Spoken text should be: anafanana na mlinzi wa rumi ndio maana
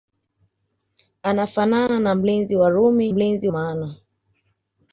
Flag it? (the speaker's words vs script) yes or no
yes